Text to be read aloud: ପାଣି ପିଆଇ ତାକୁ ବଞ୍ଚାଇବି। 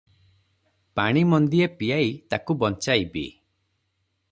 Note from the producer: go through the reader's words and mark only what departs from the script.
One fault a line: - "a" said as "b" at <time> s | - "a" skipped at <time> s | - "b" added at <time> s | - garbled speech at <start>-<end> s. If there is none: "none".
- "ମନ୍ଦିଏ" added at 1.2 s